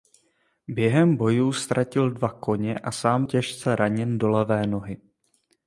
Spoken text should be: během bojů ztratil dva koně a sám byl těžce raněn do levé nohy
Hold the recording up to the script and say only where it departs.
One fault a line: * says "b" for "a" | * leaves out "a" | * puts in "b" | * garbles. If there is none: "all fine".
* leaves out "byl"